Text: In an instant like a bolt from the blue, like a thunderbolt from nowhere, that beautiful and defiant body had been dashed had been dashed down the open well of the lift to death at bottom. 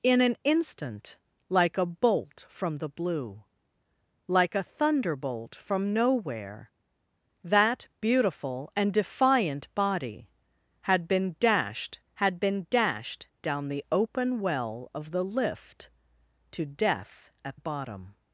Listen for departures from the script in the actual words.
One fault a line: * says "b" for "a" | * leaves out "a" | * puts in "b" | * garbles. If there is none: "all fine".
all fine